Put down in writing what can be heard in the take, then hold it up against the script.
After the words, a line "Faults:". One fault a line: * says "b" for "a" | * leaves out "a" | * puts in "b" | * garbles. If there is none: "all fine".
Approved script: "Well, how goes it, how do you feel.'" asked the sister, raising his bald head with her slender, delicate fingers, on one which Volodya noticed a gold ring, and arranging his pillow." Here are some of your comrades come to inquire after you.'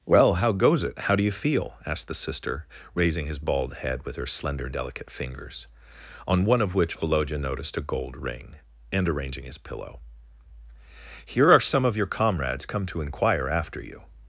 "Well, how goes it, how do you feel.'" asked the sister, raising his bald head with her slender, delicate fingers, on one of which Volodya noticed a gold ring, and arranging his pillow." Here are some of your comrades come to inquire after you.'
Faults:
* puts in "of"